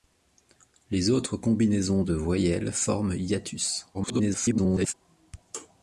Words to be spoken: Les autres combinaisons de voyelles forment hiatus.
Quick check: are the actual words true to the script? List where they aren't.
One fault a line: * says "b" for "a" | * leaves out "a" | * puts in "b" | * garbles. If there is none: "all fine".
* garbles